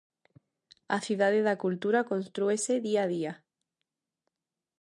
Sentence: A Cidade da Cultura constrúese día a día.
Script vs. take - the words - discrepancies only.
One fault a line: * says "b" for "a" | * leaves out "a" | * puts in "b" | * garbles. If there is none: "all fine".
all fine